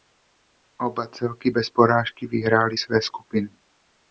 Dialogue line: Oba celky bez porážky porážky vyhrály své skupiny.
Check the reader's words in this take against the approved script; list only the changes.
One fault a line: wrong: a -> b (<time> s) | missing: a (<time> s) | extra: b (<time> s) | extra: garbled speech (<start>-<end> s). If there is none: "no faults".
missing: porážky (2.3 s)